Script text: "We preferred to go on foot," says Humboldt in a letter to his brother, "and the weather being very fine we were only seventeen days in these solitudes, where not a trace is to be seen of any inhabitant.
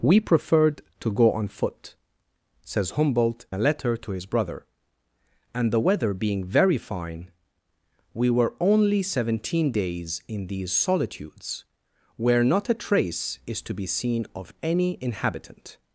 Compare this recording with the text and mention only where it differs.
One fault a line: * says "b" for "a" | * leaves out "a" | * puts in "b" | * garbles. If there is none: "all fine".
* leaves out "in"